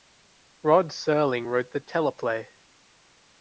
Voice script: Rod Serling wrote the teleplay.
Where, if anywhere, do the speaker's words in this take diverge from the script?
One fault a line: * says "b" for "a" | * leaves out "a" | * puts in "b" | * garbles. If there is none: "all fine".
all fine